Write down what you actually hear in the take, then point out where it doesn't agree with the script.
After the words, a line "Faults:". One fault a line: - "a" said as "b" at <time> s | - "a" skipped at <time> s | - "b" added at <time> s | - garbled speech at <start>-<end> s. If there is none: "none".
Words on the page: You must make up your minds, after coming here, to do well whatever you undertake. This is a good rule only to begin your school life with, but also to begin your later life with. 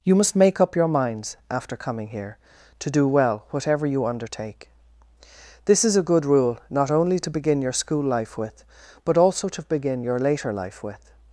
You must make up your minds, after coming here, to do well whatever you undertake. This is a good rule not only to begin your school life with, but also to begin your later life with.
Faults:
- "not" added at 6.7 s